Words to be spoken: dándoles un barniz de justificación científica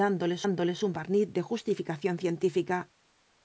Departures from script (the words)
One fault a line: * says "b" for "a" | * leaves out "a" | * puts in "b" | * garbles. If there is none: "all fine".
* puts in "dándoles"